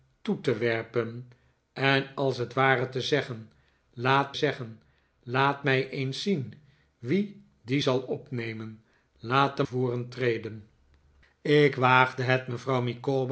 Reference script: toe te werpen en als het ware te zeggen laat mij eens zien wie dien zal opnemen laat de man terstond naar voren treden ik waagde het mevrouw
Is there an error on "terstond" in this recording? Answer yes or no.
yes